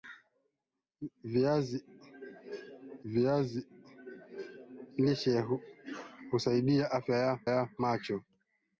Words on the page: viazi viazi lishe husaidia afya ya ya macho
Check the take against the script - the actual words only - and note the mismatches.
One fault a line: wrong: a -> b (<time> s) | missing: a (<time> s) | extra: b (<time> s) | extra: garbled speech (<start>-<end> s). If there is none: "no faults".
no faults